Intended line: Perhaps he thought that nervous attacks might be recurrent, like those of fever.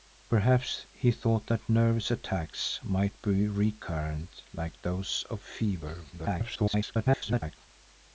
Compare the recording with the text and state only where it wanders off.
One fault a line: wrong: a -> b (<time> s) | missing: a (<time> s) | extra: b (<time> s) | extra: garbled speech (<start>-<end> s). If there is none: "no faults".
extra: garbled speech (6.1-7.6 s)